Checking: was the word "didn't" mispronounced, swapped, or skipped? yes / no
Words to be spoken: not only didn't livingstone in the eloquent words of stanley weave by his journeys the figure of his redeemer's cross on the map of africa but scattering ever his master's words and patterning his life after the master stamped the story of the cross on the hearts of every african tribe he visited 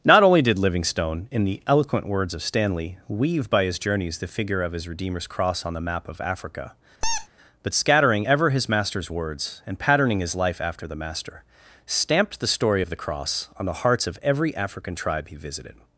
yes